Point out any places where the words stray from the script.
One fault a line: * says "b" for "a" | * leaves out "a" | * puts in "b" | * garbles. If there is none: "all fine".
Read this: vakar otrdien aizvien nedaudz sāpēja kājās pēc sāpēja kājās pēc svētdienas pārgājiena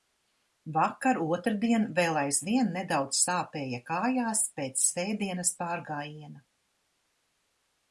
* puts in "vēl"
* leaves out "sāpēja kājās pēc"